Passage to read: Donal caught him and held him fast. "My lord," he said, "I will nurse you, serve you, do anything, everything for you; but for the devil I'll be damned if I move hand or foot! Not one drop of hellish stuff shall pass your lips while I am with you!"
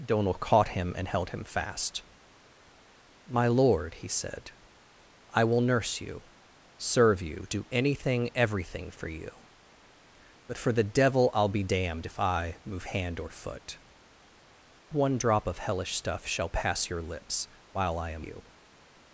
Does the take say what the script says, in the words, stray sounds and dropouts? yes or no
no